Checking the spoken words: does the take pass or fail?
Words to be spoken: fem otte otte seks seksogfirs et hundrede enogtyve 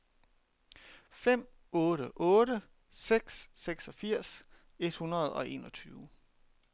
fail